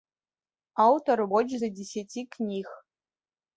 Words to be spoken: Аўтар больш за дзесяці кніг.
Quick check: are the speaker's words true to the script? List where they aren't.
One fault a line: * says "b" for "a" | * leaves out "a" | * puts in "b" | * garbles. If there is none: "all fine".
all fine